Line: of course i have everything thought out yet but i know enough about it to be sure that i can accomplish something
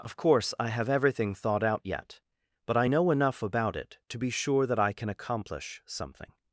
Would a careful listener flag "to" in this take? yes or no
no